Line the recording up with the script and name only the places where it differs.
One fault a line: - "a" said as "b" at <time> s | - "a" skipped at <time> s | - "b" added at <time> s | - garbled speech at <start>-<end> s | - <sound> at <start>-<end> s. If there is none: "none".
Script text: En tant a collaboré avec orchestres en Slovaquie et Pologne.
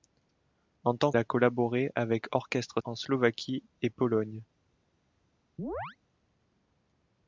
- chirp at 5.6-6.0 s